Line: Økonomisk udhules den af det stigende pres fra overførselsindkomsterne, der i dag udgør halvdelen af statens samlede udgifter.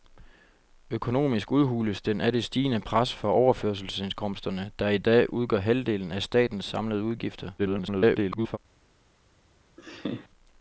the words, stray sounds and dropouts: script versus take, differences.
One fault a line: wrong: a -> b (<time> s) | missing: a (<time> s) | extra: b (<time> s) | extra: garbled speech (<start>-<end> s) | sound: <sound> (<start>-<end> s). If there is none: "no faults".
extra: garbled speech (7.6-8.6 s)
sound: laugh (9.8-10.3 s)